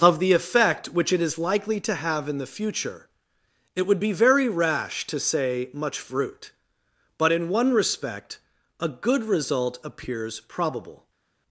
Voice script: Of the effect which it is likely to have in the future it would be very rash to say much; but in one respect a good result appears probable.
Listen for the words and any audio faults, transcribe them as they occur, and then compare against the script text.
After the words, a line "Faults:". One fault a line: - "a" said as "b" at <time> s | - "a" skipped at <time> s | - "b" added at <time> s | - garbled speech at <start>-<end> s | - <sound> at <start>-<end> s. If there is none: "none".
Of the effect which it is likely to have in the future it would be very rash to say much; fruit but in one respect a good result appears probable.
Faults:
- "fruit" added at 6.0 s